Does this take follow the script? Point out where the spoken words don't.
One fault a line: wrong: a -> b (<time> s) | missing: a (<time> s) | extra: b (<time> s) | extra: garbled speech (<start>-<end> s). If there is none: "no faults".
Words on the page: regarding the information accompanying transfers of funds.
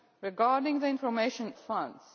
missing: accompanying transfers of (1.5 s)